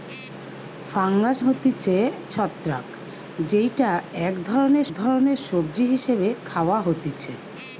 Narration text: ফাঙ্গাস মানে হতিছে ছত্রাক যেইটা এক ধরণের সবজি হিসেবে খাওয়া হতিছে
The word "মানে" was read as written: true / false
false